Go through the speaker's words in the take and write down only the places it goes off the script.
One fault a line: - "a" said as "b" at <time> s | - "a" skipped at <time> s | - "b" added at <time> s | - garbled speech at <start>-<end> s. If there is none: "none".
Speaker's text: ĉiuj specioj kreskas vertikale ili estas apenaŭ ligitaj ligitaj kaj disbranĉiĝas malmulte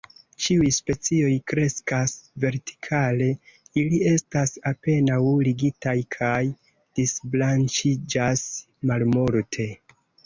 - "ligitaj" skipped at 6.0 s